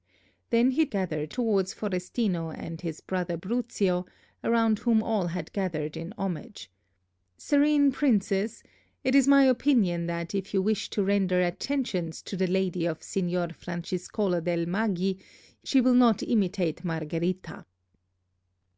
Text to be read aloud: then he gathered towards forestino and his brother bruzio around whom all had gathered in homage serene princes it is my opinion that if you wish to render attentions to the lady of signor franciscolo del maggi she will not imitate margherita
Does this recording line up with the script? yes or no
yes